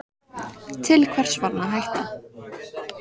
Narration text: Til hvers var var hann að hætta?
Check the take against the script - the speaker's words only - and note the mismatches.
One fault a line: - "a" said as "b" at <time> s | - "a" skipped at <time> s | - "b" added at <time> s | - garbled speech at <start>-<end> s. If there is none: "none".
- "var" skipped at 1.5 s